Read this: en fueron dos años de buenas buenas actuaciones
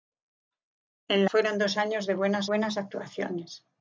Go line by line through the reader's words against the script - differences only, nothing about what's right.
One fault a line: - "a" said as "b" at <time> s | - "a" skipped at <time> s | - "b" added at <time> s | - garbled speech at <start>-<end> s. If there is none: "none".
none